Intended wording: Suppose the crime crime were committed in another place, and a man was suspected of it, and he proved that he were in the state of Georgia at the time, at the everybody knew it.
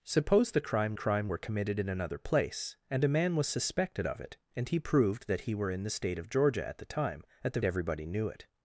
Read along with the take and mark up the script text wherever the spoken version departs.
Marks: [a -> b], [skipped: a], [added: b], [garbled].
Suppose the crime crime were committed in another place, and a man was suspected of it, and he proved that he were in the state of Georgia at the time, at the everybody knew it.